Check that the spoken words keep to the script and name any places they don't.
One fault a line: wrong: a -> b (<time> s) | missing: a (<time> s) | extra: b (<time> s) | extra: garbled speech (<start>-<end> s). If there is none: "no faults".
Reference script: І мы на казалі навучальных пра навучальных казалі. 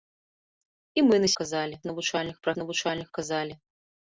no faults